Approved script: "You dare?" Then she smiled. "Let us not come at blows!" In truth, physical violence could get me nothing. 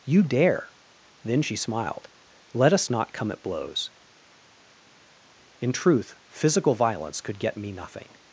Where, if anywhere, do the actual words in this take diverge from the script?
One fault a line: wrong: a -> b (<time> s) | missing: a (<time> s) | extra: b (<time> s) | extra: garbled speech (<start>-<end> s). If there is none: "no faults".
no faults